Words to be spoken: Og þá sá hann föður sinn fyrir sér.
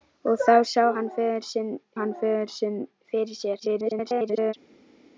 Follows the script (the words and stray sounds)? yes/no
no